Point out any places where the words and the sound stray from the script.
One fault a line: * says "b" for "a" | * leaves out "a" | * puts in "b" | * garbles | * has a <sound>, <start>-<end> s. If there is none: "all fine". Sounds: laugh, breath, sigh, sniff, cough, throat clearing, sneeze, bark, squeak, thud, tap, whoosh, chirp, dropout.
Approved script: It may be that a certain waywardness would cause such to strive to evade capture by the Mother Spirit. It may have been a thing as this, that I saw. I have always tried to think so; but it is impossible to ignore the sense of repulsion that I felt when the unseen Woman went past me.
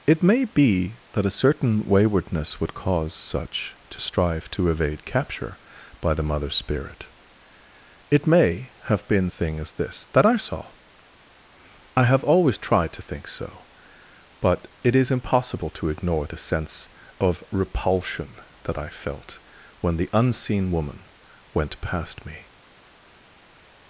all fine